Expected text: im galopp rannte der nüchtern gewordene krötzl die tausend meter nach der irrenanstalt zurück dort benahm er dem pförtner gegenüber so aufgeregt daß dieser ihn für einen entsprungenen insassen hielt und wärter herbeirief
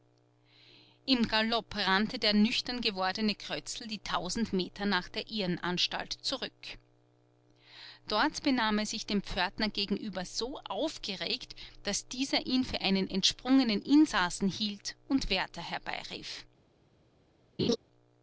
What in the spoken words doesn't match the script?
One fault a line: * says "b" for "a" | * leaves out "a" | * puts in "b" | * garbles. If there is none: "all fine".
* puts in "sich"